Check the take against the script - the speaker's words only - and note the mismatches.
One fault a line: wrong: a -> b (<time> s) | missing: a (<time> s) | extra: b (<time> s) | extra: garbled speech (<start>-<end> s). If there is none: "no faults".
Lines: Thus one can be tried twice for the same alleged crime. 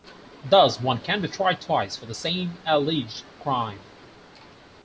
no faults